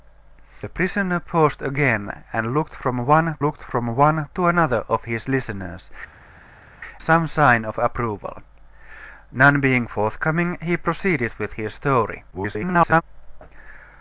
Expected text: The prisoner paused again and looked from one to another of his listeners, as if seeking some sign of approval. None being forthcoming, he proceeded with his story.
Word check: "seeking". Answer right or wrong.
wrong